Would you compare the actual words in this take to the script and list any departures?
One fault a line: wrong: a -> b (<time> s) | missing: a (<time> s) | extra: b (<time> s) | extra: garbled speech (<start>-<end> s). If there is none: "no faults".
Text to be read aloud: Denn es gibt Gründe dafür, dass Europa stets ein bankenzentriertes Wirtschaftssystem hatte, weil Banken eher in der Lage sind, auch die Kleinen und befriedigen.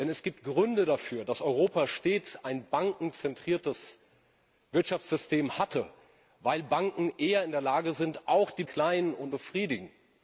no faults